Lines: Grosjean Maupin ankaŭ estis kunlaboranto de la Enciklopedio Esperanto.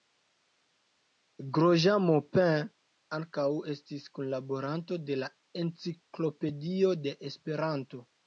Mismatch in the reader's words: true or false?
true